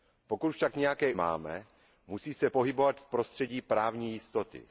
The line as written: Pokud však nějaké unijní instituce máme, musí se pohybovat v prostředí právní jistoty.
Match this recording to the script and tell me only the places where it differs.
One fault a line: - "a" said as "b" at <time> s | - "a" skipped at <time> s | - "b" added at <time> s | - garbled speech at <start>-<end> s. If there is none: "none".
- "unijní instituce" skipped at 1.1 s